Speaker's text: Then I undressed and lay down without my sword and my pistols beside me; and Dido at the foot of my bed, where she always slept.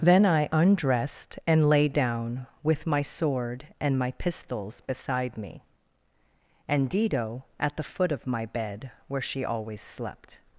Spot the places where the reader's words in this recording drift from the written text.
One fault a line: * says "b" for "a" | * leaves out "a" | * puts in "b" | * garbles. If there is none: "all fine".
* says "with" for "without"